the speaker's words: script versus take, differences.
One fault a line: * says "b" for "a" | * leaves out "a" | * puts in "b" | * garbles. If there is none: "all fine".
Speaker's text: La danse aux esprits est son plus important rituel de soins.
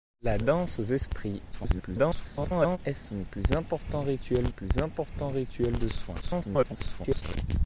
* garbles
* puts in "plus important rituel"
* garbles